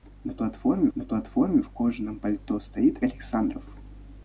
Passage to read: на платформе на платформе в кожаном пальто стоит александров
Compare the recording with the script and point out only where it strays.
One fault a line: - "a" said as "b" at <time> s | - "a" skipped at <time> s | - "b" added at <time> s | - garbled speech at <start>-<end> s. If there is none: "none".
none